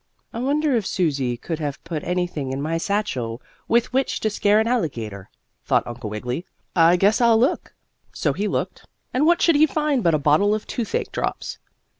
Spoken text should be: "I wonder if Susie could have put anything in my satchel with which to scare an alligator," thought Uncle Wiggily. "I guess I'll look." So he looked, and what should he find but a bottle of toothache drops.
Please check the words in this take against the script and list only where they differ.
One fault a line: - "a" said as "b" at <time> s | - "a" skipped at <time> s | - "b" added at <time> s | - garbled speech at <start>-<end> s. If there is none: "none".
none